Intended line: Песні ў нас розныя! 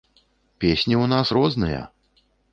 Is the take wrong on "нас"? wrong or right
right